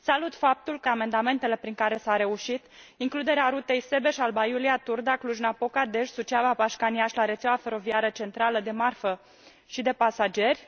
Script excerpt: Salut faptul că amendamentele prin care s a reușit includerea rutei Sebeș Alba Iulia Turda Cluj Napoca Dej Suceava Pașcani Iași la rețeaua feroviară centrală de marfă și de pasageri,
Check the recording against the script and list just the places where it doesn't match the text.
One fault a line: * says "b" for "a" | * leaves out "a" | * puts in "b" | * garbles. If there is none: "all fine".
all fine